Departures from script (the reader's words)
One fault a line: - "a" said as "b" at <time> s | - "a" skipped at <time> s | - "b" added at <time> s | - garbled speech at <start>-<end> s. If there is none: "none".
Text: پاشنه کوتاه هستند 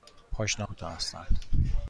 none